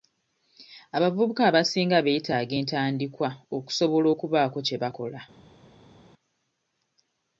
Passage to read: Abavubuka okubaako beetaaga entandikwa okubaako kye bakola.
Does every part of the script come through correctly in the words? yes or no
no